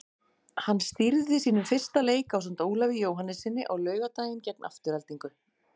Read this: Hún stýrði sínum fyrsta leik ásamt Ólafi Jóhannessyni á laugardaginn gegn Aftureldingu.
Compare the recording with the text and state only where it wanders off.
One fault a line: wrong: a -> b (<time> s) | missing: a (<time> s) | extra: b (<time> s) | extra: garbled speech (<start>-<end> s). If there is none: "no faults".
wrong: Hún -> Hann (0.7 s)